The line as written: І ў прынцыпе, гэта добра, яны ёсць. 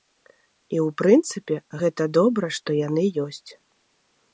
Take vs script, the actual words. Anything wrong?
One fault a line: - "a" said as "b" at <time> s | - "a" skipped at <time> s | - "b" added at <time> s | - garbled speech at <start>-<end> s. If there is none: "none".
- "што" added at 2.6 s